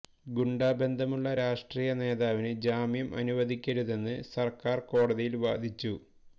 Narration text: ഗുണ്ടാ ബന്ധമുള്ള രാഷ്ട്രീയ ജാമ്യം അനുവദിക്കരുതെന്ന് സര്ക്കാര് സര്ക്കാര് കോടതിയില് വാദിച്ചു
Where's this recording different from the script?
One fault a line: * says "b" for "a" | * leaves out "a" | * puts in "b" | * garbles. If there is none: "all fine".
* puts in "നേതാവിന്"
* leaves out "സര്ക്കാര്"